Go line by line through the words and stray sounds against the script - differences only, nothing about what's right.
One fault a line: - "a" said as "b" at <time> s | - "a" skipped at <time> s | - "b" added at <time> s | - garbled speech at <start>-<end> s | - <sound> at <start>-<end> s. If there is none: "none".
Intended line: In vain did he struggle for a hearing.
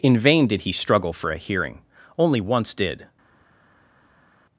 - "Only once did" added at 2.2 s